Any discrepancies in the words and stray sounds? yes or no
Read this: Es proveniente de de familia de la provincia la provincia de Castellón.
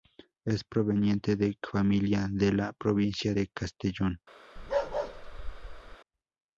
yes